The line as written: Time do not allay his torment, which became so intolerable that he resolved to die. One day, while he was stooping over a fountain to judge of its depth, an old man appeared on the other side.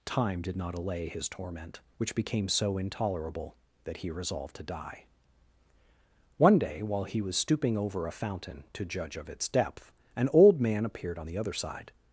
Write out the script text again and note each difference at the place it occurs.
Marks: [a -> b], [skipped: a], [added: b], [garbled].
Time [do -> did] not allay his torment, which became so intolerable that he resolved to die. One day, while he was stooping over a fountain to judge of its depth, an old man appeared on the other side.